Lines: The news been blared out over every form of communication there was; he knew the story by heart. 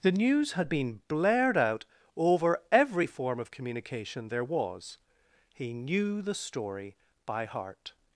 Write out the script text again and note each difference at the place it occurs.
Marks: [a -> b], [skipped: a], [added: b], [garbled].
The news [added: had] been blared out over every form of communication there was; he knew the story by heart.